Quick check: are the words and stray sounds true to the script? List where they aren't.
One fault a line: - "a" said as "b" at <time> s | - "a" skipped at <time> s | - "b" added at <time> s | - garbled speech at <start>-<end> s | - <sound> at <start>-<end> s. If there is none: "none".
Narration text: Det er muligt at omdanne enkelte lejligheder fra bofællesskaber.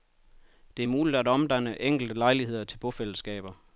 - "fra" said as "til" at 2.6 s